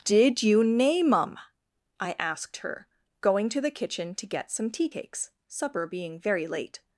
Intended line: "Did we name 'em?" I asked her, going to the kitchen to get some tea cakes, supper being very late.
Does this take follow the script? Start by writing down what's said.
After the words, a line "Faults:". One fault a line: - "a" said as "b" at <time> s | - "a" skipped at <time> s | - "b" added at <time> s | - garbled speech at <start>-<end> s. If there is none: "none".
"Did you name 'em?" I asked her, going to the kitchen to get some tea cakes, supper being very late.
Faults:
- "we" said as "you" at 0.4 s